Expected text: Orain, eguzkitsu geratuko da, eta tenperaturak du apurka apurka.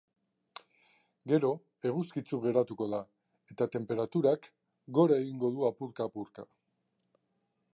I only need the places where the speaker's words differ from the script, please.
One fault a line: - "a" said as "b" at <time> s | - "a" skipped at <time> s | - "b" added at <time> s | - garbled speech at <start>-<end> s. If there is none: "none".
- "Orain" said as "Gero" at 1.3 s
- "gora egingo" added at 5.0 s